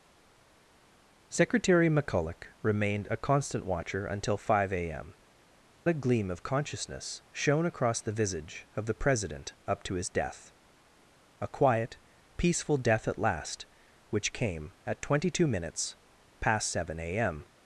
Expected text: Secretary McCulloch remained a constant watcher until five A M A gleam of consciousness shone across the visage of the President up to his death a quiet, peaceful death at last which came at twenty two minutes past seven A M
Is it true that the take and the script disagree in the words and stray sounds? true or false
false